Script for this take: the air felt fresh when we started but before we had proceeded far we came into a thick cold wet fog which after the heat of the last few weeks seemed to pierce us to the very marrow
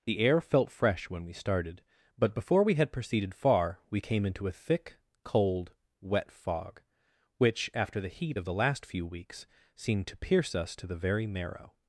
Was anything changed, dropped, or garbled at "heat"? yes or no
no